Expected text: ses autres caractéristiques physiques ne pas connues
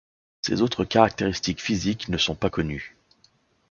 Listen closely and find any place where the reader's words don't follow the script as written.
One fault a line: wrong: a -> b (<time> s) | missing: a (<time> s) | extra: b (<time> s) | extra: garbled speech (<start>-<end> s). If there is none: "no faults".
extra: sont (2.2 s)